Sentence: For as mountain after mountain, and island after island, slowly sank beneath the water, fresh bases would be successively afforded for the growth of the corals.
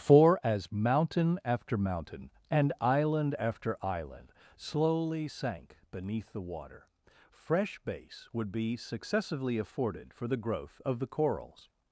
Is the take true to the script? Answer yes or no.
no